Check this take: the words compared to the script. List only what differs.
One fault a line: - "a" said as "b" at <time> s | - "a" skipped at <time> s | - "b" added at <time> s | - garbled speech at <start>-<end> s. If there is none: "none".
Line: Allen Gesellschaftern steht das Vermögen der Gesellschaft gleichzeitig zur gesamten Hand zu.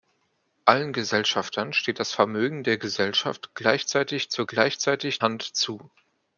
- "gesamten" said as "gleichzeitig" at 4.5 s